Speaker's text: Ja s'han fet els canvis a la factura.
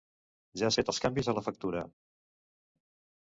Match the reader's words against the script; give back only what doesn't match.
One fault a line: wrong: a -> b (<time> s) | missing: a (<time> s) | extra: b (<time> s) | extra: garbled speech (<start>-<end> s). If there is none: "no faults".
missing: s'han (0.7 s)